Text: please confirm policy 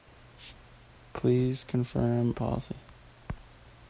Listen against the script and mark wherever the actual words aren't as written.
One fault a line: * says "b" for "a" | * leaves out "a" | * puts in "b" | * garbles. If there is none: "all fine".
all fine